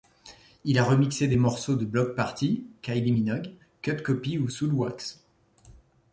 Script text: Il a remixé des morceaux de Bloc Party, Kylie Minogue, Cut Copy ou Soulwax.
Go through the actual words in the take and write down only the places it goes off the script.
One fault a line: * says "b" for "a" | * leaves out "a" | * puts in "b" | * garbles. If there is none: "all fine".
all fine